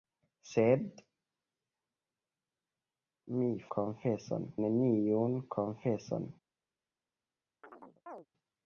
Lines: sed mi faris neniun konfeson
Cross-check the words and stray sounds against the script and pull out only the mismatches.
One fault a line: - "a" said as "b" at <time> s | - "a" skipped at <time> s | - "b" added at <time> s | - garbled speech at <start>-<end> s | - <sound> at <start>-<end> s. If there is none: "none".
- "faris" said as "konfeson" at 3.8 s
- chirp at 7.6-8.3 s